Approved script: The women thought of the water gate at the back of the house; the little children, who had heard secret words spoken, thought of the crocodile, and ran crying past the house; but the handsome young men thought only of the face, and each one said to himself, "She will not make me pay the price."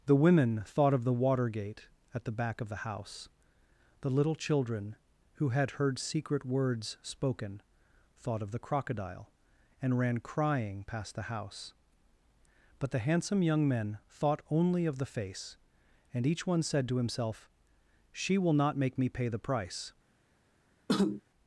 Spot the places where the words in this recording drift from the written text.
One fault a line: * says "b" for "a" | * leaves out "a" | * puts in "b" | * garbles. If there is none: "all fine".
all fine